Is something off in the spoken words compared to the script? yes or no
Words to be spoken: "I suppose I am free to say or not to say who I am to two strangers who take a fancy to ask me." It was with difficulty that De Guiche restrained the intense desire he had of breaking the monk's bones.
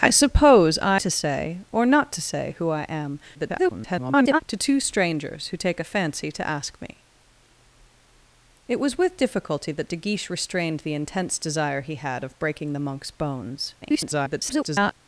yes